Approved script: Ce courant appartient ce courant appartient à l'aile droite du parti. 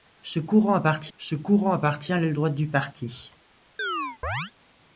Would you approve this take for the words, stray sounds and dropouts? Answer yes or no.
no